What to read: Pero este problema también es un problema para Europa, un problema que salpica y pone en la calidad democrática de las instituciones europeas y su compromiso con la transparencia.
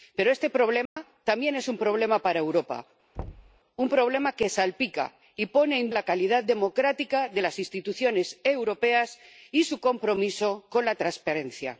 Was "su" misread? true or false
false